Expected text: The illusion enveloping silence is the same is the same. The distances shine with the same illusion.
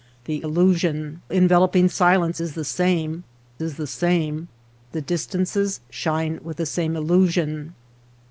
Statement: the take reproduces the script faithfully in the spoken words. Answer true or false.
true